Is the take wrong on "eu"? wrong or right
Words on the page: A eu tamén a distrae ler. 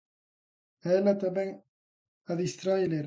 wrong